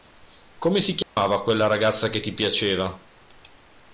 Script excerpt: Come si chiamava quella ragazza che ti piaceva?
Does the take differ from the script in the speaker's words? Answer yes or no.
no